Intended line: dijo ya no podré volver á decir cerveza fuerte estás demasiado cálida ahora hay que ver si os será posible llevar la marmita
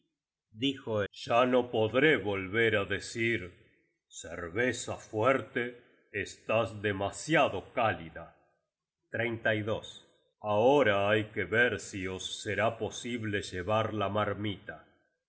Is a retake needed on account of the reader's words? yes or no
no